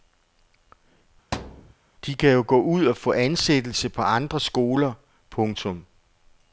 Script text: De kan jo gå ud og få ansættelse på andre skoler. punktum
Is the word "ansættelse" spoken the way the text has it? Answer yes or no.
yes